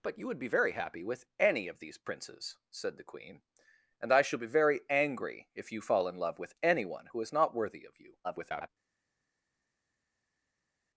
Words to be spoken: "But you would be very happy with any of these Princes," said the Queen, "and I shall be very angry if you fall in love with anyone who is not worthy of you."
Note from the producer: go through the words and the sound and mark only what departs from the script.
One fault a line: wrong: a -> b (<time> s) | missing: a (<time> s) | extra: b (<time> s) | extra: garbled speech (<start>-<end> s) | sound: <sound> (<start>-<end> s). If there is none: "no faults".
extra: garbled speech (8.2-8.7 s)